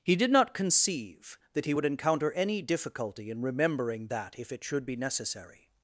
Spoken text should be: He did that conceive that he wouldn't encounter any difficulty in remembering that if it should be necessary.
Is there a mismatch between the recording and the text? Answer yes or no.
yes